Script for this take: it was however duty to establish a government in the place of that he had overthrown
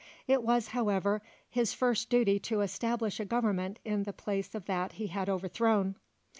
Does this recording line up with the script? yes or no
no